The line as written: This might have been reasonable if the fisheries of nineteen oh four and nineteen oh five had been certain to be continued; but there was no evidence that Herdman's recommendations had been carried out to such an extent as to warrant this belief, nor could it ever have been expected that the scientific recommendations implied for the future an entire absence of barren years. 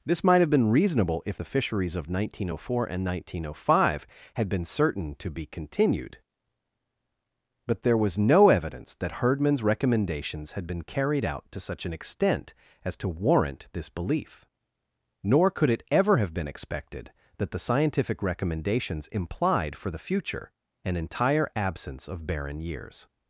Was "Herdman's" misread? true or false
false